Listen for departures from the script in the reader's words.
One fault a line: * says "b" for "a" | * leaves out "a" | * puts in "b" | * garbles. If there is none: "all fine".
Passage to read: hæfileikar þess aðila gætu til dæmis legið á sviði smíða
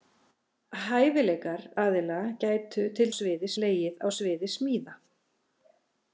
* leaves out "þess"
* says "sviði" for "dæmis"